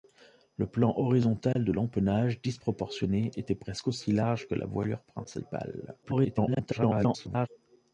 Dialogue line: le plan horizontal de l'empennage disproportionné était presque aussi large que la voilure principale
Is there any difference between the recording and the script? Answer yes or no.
yes